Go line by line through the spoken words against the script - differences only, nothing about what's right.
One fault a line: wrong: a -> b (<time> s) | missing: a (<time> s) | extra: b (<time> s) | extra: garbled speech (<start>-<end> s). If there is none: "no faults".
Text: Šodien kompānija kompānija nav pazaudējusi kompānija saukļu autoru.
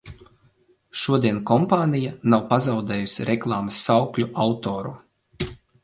missing: kompānija (2.1 s)
wrong: kompānija -> reklāmas (3.3 s)